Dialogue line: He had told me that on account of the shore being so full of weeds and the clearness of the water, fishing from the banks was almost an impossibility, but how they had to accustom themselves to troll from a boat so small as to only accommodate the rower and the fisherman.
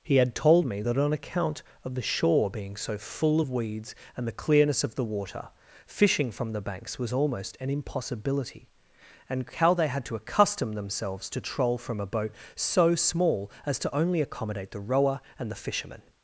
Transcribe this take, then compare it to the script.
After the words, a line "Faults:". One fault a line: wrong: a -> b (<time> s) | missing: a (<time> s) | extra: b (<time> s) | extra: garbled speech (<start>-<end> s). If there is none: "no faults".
He had told me that on account of the shore being so full of weeds and the clearness of the water, fishing from the banks was almost an impossibility, and how they had to accustom themselves to troll from a boat so small as to only accommodate the rower and the fisherman.
Faults:
wrong: but -> and (9.3 s)